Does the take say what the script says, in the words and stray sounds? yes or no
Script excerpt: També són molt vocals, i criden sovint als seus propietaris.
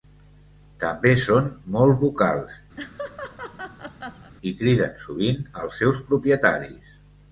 no